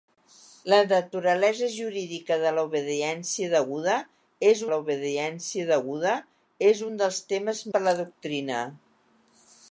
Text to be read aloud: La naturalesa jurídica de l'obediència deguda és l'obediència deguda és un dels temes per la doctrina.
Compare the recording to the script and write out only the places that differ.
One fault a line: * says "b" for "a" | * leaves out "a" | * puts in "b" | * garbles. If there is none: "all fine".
all fine